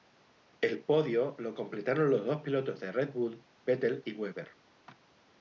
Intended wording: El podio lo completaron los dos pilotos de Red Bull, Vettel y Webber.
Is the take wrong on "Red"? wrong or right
right